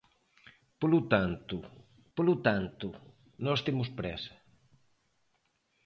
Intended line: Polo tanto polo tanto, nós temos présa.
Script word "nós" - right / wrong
right